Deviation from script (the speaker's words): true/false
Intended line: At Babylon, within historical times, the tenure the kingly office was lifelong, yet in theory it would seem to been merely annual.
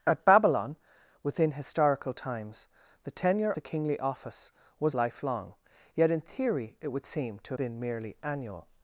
false